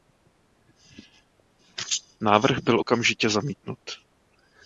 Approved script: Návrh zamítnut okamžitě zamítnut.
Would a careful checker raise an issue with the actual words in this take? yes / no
yes